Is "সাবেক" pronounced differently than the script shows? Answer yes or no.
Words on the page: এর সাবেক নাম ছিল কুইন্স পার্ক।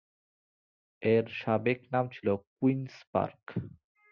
no